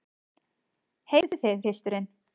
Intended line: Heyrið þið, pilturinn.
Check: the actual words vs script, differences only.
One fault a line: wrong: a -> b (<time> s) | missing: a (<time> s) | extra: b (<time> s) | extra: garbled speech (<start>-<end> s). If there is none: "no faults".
no faults